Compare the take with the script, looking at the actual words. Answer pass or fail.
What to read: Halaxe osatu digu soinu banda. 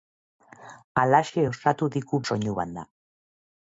pass